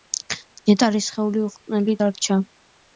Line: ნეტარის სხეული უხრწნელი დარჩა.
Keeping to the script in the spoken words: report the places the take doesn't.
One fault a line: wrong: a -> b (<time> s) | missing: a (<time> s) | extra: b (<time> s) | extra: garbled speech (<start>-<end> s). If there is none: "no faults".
no faults